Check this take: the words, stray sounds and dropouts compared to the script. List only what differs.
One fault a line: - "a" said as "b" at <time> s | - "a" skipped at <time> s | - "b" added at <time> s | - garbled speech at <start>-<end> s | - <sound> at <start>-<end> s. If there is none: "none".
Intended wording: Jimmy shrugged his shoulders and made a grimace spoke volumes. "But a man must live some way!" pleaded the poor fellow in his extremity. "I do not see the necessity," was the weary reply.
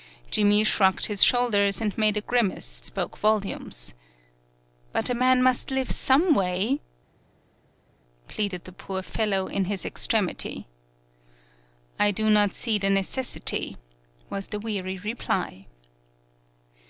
none